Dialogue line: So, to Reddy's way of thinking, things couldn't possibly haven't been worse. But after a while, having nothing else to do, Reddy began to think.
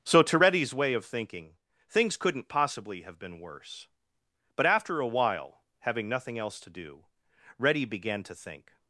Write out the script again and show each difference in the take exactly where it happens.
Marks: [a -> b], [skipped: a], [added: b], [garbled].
So, to Reddy's way of thinking, things couldn't possibly [haven't -> have] been worse. But after a while, having nothing else to do, Reddy began to think.